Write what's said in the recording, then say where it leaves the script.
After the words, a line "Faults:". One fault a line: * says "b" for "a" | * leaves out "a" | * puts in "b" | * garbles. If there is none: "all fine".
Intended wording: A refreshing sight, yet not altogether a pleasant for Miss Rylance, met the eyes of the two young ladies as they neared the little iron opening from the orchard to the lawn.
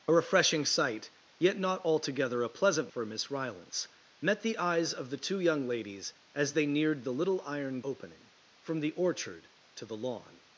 A refreshing sight, yet not altogether a pleasant for Miss Rylance, met the eyes of the two young ladies as they neared the little iron opening from the orchard to the lawn.
Faults:
all fine